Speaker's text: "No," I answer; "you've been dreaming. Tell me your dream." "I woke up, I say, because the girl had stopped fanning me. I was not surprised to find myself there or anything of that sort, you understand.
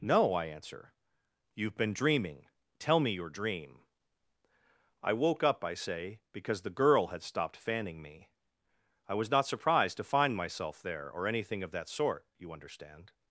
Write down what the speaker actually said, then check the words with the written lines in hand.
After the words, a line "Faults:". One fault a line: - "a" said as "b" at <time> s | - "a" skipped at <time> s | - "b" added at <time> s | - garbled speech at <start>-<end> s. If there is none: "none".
"No," I answer; "you've been dreaming. Tell me your dream." "I woke up, I say, because the girl had stopped fanning me. I was not surprised to find myself there or anything of that sort, you understand.
Faults:
none